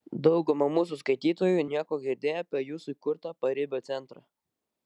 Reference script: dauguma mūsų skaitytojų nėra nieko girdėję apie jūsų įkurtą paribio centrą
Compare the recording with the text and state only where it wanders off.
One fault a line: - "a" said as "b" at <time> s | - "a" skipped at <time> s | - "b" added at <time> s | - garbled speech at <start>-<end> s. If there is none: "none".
- "nėra" skipped at 1.6 s